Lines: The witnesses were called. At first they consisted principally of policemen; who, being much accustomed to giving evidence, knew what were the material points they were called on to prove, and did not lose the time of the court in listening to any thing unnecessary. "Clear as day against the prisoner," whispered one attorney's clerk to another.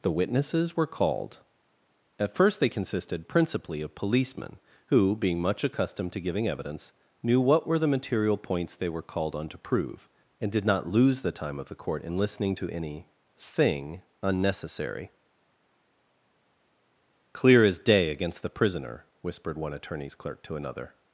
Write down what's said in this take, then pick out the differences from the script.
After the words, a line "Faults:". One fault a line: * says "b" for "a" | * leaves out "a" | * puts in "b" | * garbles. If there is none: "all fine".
The witnesses were called. At first they consisted principally of policemen; who, being much accustomed to giving evidence, knew what were the material points they were called on to prove, and did not lose the time of the court in listening to any thing unnecessary. "Clear as day against the prisoner," whispered one attorney's clerk to another.
Faults:
all fine